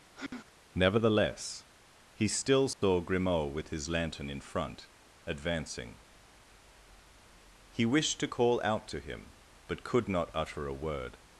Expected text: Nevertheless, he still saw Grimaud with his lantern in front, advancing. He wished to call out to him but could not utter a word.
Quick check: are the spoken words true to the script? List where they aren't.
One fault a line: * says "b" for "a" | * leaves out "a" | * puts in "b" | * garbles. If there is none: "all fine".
all fine